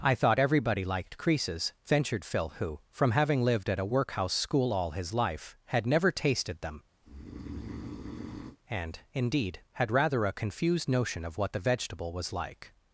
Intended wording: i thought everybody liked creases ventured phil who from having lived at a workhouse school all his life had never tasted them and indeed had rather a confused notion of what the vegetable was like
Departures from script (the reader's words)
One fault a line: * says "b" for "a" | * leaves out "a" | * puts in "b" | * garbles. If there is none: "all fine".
all fine